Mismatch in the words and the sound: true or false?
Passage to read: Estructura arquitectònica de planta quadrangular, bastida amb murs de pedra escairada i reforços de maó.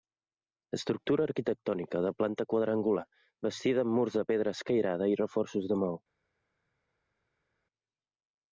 false